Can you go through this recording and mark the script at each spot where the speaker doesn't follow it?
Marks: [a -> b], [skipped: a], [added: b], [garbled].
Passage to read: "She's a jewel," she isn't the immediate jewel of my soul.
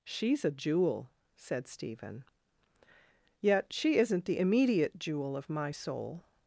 "She's a jewel," [added: said Stephen Yet] she isn't the immediate jewel of my soul.